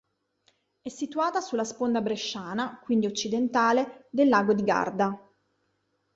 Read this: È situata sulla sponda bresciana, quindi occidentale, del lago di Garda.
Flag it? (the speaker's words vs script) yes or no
no